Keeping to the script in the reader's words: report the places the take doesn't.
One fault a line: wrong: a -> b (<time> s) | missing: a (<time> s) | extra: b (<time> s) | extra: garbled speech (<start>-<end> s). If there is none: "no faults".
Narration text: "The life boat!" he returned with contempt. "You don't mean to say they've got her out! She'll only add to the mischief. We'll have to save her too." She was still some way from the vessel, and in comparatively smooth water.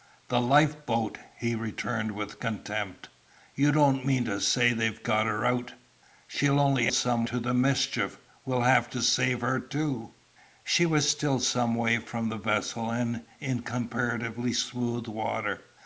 wrong: add -> some (6.9 s)